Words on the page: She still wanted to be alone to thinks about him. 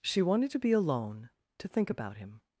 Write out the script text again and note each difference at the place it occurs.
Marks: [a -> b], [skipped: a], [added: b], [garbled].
She [skipped: still] wanted to be alone to [thinks -> think] about him.